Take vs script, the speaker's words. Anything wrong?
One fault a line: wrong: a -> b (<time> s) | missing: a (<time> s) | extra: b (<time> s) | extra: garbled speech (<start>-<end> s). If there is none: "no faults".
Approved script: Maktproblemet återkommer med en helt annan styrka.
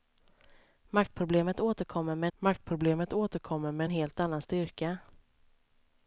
extra: maktproblemet återkommer med (2.4 s)